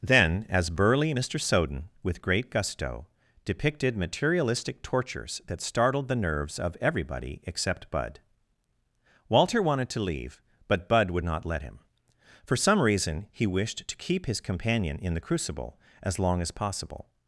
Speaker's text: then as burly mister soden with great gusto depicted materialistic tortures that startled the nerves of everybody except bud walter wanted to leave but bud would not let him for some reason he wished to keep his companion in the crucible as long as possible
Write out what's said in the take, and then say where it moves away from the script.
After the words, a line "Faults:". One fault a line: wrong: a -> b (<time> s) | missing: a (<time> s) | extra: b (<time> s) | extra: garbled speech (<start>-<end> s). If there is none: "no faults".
then as burly mister soden with great gusto depicted materialistic tortures that startled the nerves of everybody except bud walter wanted to leave but bud would not let him for some reason he wished to keep his companion in the crucible as long as possible
Faults:
no faults